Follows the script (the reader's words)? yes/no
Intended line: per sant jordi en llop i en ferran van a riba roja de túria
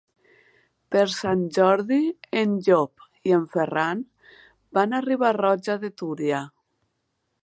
yes